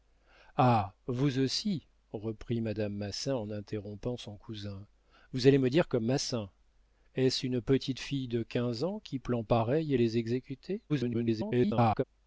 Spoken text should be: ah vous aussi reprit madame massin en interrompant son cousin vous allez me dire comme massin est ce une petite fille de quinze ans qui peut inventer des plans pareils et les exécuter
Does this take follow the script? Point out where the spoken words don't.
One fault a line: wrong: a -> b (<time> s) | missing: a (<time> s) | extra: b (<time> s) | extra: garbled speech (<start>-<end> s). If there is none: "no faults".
missing: peut inventer des (9.2 s)
extra: garbled speech (10.9-12.0 s)